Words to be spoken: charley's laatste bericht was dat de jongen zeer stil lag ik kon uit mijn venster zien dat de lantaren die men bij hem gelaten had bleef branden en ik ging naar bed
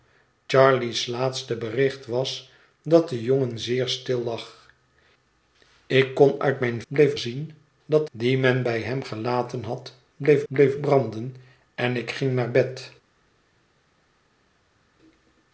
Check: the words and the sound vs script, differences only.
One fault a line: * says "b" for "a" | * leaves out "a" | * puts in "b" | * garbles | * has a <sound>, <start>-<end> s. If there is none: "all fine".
* says "bleef" for "venster"
* leaves out "de lantaren"
* puts in "bleef"